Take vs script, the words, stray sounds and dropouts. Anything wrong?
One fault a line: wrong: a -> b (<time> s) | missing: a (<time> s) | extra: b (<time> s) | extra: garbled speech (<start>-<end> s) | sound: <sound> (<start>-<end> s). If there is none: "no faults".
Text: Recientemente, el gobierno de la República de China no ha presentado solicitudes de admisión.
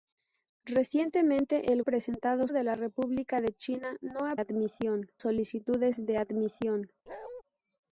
wrong: gobierno -> presentado (1.8 s)
wrong: presentado -> admisión (4.4 s)
sound: bark (7.1-7.4 s)